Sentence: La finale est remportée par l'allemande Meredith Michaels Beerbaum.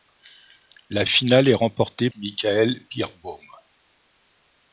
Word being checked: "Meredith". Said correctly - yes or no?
no